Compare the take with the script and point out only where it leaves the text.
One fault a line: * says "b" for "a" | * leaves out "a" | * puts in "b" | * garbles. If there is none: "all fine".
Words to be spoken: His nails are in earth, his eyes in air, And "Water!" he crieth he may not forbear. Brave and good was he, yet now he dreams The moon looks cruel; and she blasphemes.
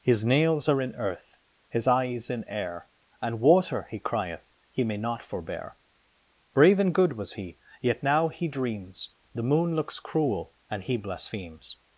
* says "he" for "she"